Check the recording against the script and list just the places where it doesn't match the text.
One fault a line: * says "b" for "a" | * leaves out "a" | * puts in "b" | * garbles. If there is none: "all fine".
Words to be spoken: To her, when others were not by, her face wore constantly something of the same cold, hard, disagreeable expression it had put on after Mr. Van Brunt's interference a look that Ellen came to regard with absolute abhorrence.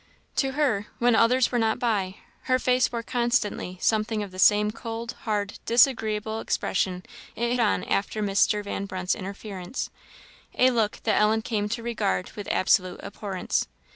* leaves out "had put"